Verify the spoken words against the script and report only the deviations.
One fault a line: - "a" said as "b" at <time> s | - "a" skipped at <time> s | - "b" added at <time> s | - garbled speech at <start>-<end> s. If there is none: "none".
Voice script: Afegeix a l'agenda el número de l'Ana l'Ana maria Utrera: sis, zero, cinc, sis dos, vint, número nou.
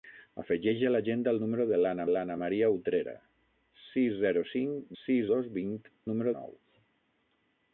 none